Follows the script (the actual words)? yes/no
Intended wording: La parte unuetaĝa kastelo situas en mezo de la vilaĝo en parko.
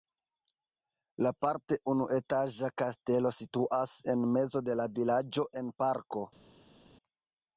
yes